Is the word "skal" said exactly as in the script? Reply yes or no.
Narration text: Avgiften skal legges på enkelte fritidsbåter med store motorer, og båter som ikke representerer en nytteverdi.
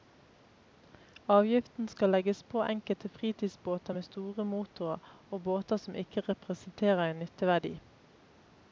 yes